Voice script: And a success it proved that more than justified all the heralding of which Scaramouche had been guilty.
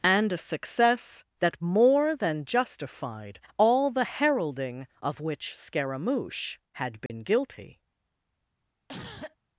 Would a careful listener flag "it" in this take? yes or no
yes